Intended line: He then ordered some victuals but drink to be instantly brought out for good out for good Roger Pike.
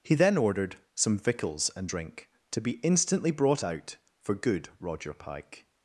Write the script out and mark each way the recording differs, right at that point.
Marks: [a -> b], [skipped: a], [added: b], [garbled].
He then ordered some victuals [but -> and] drink to be instantly brought out for good [skipped: out for good] Roger Pike.